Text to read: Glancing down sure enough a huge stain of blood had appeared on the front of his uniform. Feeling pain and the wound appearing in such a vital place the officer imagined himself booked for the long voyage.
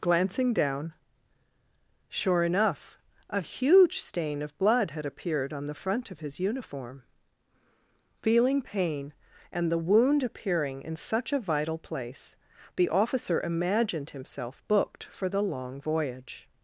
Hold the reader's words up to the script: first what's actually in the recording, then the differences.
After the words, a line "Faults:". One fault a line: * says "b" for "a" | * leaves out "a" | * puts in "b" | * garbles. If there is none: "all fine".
Glancing down sure enough a huge stain of blood had appeared on the front of his uniform. Feeling pain and the wound appearing in such a vital place the officer imagined himself booked for the long voyage.
Faults:
all fine